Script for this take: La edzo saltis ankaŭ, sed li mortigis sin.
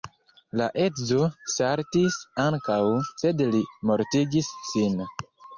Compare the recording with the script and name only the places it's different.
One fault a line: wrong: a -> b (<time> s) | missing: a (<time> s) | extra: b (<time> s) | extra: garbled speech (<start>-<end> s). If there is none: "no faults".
no faults